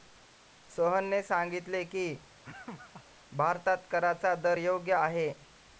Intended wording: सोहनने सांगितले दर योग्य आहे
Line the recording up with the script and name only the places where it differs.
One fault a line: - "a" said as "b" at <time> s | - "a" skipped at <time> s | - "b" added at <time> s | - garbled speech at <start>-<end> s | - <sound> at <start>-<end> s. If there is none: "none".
- "की भारतात कराचा" added at 1.9 s
- laugh at 2.4-3.1 s